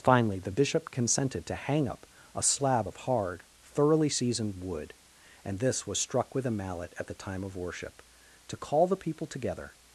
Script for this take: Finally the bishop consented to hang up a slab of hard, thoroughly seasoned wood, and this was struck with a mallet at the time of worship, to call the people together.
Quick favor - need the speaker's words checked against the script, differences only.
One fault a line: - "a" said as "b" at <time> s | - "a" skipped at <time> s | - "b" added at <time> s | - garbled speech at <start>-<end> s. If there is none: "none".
none